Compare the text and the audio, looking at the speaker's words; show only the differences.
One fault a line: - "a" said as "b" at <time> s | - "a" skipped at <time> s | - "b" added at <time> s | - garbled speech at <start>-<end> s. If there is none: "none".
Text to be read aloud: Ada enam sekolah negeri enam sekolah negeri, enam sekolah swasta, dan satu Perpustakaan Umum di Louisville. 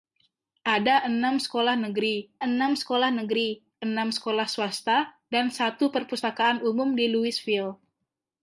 none